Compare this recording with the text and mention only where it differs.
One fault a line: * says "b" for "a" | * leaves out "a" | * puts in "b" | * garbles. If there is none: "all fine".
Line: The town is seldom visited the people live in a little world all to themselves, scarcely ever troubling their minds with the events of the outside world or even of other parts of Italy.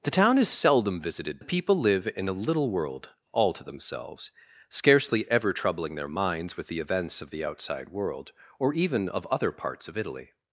all fine